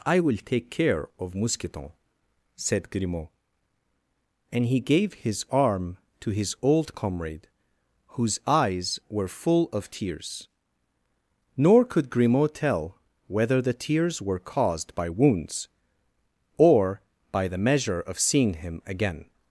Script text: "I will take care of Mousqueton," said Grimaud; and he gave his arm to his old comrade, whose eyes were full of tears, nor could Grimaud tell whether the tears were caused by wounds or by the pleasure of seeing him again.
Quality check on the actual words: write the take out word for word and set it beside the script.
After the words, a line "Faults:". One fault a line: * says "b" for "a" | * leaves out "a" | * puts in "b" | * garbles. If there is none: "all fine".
"I will take care of Mousqueton," said Grimaud; and he gave his arm to his old comrade, whose eyes were full of tears, nor could Grimaud tell whether the tears were caused by wounds or by the measure of seeing him again.
Faults:
* says "measure" for "pleasure"